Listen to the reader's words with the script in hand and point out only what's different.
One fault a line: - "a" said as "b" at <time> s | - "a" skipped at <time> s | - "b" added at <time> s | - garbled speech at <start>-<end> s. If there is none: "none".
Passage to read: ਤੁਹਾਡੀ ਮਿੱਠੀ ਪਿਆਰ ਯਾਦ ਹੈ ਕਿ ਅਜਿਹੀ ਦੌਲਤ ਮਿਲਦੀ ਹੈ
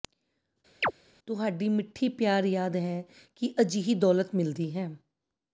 none